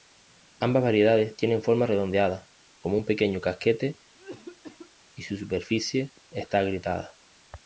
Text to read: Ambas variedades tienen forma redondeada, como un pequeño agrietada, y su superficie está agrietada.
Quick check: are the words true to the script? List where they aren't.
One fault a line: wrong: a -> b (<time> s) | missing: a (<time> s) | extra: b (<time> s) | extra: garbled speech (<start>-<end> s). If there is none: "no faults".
wrong: agrietada -> casquete (3.4 s)